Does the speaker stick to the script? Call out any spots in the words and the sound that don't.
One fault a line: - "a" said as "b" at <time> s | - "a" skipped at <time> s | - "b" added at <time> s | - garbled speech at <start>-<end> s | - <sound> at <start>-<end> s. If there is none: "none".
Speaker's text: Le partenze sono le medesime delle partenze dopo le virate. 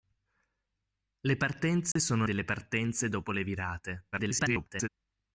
- dropout at 1.9-2.0 s
- "le medesime" skipped at 2.3 s
- garbled speech at 4.1-4.9 s